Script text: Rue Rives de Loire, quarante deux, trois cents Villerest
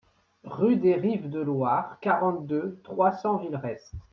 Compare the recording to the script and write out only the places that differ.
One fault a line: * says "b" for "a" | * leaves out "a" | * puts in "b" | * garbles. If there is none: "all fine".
* puts in "des"